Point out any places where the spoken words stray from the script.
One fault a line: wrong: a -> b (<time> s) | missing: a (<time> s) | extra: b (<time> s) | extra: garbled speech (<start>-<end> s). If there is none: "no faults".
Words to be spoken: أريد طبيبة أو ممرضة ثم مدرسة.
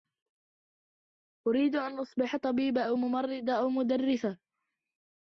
extra: أن أصبح (1.7 s)
wrong: ثم -> أو (3.5 s)